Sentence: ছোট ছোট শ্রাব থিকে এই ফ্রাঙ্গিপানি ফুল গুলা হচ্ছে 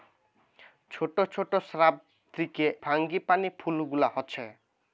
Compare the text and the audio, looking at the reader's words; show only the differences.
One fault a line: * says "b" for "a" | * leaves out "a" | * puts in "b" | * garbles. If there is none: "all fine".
* leaves out "এই"